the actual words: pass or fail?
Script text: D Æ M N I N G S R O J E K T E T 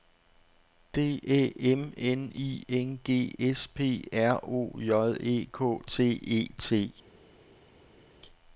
fail